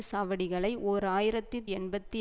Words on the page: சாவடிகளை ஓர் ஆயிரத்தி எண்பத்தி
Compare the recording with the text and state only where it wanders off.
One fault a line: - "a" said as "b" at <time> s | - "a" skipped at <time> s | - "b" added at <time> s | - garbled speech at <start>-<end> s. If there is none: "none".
none